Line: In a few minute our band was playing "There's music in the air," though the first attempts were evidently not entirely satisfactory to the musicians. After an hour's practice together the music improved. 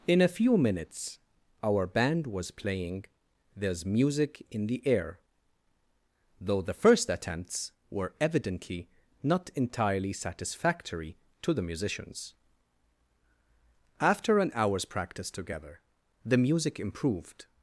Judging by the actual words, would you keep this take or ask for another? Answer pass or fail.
fail